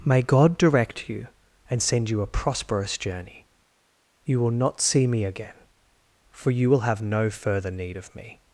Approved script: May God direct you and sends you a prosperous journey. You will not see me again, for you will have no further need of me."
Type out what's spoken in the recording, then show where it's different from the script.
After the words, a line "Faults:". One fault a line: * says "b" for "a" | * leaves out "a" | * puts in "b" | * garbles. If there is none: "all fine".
May God direct you and send you a prosperous journey. You will not see me again, for you will have no further need of me."
Faults:
* says "send" for "sends"